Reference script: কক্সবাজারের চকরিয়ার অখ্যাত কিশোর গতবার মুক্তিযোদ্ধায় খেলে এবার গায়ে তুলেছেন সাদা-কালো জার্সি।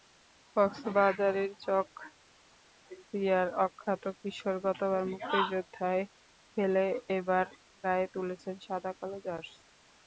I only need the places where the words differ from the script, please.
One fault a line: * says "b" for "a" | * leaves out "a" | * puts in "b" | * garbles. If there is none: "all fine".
all fine